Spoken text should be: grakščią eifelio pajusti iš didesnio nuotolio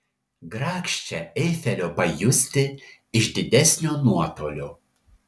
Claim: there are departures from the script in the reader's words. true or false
false